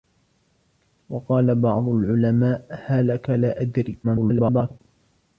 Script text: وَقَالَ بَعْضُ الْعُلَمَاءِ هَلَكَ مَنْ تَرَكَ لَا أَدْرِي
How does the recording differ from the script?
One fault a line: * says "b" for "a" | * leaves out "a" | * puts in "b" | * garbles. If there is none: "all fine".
* leaves out "مَنْ تَرَكَ"
* garbles